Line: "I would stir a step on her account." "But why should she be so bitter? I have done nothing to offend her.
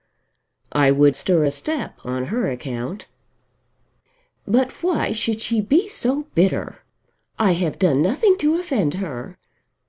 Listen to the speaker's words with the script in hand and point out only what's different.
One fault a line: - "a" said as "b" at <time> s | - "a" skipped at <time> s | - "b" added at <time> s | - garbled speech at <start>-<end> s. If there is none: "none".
none